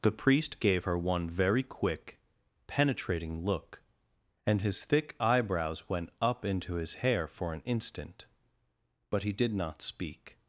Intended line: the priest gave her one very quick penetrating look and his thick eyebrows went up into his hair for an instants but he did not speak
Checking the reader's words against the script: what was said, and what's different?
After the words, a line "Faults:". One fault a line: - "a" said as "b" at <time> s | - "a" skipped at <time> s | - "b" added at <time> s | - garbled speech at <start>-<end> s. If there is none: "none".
the priest gave her one very quick penetrating look and his thick eyebrows went up into his hair for an instant but he did not speak
Faults:
- "instants" said as "instant" at 7.6 s